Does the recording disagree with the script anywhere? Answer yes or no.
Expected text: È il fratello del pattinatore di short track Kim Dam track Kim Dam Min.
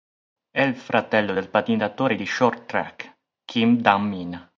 yes